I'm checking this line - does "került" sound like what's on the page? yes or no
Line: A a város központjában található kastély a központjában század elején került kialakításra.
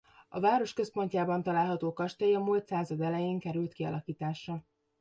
yes